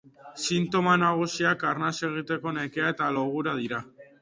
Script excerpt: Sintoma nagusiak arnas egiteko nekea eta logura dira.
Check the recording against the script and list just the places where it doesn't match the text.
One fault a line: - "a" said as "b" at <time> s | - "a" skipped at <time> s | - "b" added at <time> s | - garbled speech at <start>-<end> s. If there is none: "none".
none